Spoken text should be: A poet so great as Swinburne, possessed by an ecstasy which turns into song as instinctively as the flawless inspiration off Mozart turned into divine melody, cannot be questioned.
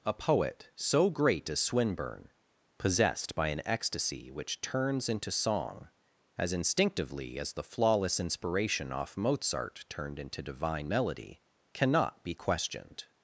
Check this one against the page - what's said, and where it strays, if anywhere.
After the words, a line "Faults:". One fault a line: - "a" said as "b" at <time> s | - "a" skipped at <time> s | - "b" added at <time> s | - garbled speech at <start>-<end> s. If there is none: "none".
A poet so great as Swinburne, possessed by an ecstasy which turns into song as instinctively as the flawless inspiration off Mozart turned into divine melody, cannot be questioned.
Faults:
none